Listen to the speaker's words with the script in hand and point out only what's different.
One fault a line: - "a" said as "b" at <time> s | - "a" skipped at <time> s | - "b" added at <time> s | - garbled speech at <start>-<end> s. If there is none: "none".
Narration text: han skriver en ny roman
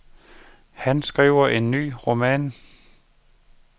none